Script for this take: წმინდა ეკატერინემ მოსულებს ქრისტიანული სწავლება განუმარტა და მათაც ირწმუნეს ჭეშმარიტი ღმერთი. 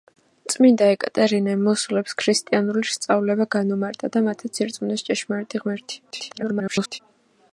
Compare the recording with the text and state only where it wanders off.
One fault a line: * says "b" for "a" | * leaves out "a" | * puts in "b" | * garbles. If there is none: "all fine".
* garbles